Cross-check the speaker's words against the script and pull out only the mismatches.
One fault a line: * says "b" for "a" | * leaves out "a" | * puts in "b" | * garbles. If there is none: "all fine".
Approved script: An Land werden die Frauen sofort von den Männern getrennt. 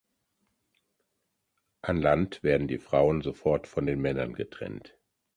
all fine